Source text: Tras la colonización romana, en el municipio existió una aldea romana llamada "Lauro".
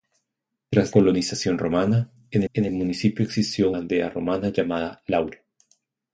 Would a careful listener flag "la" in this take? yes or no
yes